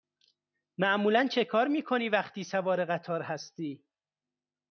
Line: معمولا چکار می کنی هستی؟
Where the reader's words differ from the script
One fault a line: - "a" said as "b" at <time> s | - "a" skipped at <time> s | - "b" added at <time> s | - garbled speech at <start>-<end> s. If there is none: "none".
- "وقتی سوار قطار" added at 2.1 s